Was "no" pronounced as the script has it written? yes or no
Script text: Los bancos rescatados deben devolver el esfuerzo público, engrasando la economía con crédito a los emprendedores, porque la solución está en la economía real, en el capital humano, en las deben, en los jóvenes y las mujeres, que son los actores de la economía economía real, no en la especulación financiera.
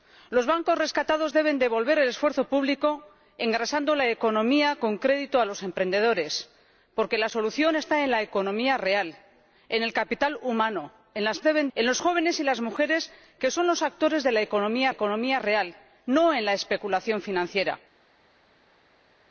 yes